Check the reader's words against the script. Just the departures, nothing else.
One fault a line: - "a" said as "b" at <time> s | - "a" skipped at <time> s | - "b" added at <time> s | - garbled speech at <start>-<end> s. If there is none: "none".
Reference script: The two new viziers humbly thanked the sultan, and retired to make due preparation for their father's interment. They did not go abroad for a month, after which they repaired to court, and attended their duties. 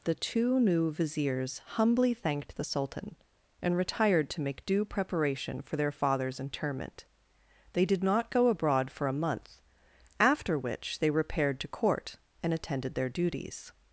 none